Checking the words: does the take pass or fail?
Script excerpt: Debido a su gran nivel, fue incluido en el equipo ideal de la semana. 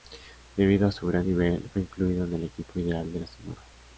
pass